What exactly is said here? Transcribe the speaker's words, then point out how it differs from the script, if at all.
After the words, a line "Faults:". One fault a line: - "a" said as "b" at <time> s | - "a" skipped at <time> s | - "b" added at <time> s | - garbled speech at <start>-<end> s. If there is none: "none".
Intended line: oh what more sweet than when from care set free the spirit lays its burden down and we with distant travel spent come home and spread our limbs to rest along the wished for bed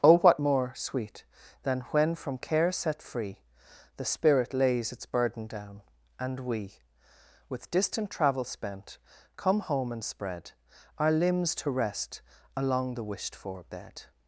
oh what more sweet than when from care set free the spirit lays its burden down and we with distant travel spent come home and spread our limbs to rest along the wished for bed
Faults:
none